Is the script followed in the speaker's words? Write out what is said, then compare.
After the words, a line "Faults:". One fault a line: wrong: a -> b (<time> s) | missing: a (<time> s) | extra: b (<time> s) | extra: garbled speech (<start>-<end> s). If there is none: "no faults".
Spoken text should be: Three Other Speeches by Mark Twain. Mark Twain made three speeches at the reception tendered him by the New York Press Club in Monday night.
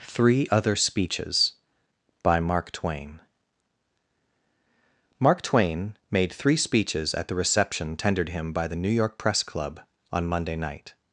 Three Other Speeches by Mark Twain. Mark Twain made three speeches at the reception tendered him by the New York Press Club on Monday night.
Faults:
wrong: in -> on (10.1 s)